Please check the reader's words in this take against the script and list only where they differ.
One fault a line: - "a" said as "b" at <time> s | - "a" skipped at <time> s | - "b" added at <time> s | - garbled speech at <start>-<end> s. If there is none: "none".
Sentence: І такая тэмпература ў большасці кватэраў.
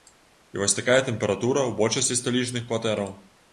- "вось" added at 0.6 s
- "сталічных" added at 2.2 s